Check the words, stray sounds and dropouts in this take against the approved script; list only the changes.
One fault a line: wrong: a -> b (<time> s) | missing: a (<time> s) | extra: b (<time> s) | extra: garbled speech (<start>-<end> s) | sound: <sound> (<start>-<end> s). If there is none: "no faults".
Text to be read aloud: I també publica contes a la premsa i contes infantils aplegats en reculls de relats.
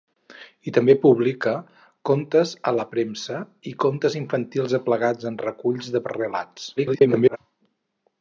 extra: garbled speech (6.8-7.4 s)